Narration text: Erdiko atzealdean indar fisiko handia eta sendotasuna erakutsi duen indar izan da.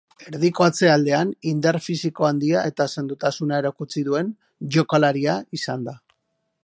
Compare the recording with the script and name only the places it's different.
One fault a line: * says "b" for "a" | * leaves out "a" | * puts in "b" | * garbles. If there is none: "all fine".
* says "jokalaria" for "indar"